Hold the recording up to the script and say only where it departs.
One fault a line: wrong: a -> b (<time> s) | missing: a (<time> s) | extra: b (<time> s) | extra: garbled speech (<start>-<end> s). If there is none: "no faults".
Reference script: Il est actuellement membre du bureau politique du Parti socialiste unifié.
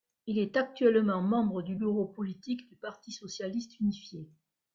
no faults